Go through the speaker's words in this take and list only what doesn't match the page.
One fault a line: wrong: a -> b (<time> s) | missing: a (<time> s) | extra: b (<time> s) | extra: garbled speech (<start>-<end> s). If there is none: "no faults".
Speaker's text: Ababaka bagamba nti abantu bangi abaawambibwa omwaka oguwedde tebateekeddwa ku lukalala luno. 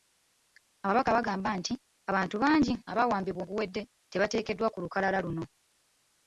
missing: omwaka (3.4 s)